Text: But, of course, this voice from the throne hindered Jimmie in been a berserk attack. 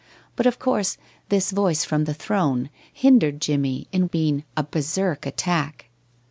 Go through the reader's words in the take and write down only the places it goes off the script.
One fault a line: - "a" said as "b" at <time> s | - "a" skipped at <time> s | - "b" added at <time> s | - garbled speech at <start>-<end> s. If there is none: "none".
none